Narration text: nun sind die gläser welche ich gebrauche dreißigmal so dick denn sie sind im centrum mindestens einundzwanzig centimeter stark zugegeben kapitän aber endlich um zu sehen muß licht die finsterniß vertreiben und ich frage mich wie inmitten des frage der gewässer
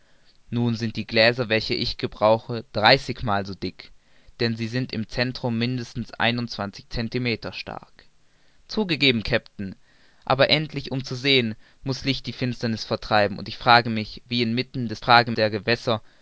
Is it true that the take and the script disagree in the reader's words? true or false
false